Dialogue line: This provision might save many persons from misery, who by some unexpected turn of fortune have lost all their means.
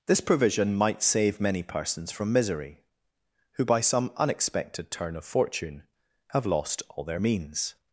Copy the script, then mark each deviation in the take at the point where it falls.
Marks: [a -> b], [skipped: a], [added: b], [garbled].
This provision might save many persons from misery, who by some unexpected turn of fortune have lost all their means.